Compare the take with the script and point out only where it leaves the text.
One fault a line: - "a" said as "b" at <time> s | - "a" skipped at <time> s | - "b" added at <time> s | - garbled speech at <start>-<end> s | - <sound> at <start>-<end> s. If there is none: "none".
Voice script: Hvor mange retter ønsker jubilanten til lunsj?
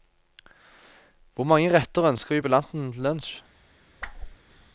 - whoosh at 4.0-4.4 s